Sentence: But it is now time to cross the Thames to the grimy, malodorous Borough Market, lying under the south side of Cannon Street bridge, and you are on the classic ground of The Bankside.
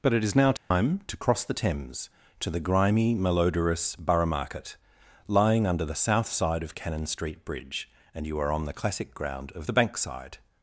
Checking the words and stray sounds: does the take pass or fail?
fail